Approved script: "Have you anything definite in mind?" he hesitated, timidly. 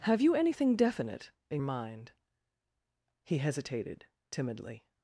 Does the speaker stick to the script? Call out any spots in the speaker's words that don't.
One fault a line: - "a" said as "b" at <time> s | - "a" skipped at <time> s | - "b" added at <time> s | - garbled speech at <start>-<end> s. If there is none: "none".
none